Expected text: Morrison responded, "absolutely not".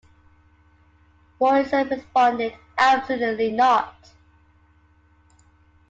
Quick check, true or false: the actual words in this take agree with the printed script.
true